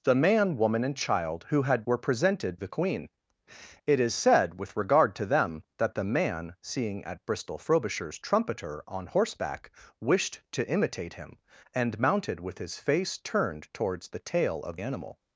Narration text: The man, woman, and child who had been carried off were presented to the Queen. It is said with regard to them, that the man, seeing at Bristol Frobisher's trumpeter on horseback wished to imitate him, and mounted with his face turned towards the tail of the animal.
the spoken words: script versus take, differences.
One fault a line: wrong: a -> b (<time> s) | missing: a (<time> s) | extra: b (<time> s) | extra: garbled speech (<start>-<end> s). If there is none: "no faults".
missing: been carried off (1.8 s)
missing: to (2.6 s)
missing: the (14.8 s)